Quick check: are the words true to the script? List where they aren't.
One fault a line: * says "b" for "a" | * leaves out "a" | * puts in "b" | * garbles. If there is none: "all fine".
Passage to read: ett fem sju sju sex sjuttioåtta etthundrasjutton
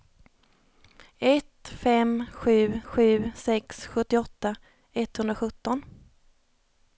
all fine